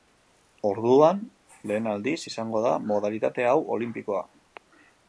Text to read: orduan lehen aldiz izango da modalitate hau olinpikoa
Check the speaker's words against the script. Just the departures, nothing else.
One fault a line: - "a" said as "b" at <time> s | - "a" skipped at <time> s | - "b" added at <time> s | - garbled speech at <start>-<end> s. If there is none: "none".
none